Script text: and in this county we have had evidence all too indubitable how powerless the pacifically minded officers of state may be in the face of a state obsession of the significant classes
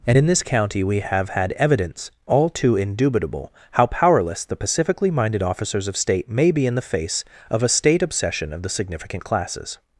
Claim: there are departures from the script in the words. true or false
false